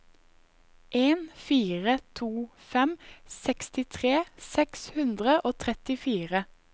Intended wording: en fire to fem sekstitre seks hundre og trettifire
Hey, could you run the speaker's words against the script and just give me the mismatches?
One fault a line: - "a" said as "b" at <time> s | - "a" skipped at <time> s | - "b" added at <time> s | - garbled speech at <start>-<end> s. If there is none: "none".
none